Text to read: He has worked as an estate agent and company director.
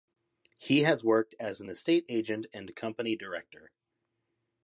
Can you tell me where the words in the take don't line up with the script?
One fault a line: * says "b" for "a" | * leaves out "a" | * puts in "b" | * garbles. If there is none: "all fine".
all fine